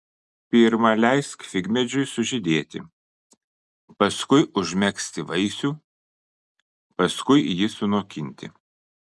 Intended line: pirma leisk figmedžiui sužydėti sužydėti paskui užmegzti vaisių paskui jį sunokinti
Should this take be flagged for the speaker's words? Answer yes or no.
yes